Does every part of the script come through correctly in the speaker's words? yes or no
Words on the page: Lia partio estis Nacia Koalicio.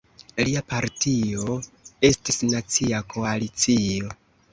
yes